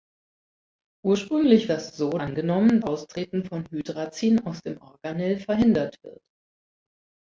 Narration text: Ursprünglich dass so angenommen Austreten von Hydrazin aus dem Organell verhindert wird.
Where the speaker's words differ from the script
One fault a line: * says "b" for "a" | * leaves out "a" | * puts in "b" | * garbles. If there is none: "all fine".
all fine